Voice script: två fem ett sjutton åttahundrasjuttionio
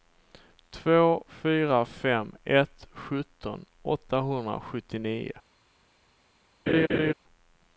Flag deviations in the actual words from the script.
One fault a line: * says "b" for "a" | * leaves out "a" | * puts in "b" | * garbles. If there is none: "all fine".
* puts in "fyra"